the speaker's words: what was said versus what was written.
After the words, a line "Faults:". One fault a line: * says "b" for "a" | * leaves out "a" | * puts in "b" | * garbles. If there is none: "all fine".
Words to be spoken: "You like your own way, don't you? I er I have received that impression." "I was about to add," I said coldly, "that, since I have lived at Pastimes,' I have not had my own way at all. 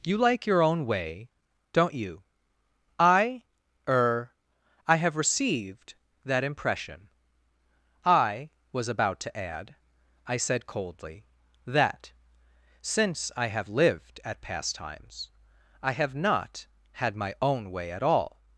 "You like your own way, don't you? I er I have received that impression." "I was about to add," I said coldly, "that, since I have lived at Pastimes,' I have not had my own way at all.
Faults:
all fine